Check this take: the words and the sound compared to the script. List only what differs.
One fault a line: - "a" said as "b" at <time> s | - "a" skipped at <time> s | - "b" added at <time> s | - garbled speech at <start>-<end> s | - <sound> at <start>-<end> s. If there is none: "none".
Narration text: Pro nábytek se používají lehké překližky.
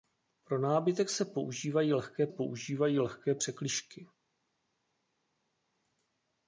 - "používají lehké" added at 2.3 s